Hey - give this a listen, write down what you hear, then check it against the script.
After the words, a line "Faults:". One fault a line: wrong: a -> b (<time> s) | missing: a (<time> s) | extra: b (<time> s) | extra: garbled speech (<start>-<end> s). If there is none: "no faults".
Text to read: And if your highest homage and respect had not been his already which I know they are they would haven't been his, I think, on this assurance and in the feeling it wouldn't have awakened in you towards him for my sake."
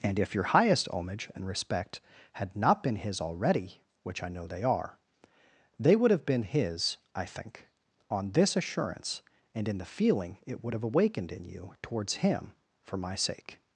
And if your highest homage and respect had not been his already which I know they are they would have been his, I think, on this assurance and in the feeling it would have awakened in you towards him for my sake."
Faults:
wrong: haven't -> have (6.1 s)
wrong: wouldn't -> would (10.6 s)